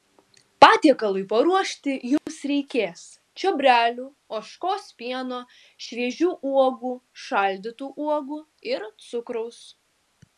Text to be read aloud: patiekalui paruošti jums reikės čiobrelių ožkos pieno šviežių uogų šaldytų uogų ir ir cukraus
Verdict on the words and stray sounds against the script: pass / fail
fail